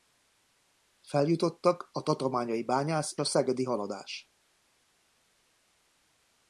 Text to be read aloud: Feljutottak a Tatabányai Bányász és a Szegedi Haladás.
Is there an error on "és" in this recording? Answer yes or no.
yes